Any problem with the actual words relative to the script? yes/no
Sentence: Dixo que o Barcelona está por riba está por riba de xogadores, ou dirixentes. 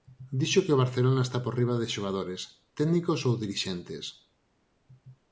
yes